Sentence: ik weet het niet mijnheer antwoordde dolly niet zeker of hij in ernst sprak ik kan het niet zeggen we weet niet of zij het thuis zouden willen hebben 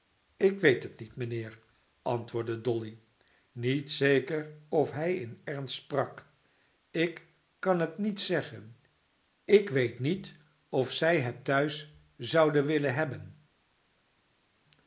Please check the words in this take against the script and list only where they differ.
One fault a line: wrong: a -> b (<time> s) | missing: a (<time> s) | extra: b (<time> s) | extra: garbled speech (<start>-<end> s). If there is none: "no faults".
wrong: we -> ik (9.4 s)